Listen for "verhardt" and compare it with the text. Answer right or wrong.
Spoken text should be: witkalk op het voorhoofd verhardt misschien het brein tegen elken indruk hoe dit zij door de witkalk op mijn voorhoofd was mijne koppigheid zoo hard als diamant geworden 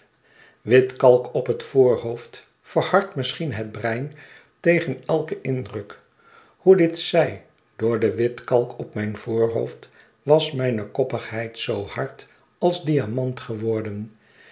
right